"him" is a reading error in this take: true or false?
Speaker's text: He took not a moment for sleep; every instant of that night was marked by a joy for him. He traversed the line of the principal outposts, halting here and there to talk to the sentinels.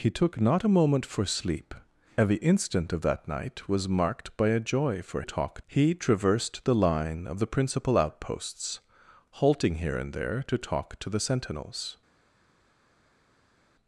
true